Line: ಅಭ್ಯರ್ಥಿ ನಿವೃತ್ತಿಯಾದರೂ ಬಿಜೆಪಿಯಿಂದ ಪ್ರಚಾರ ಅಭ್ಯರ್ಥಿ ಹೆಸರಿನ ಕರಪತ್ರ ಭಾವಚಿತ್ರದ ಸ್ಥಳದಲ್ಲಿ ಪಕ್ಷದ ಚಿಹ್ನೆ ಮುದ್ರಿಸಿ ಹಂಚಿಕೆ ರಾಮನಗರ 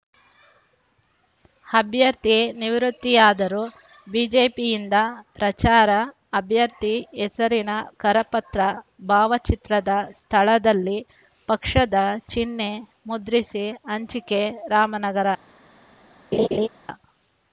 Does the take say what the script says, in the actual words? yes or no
yes